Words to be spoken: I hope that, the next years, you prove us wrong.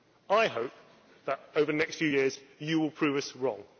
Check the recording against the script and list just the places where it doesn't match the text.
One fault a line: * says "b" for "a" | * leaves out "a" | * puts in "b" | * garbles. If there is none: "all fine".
* puts in "over"
* puts in "few"
* puts in "will"